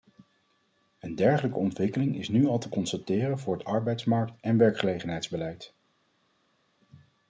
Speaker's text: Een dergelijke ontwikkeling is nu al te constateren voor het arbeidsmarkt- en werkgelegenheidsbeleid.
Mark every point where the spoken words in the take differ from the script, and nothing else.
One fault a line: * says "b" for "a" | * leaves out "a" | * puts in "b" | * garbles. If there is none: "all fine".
all fine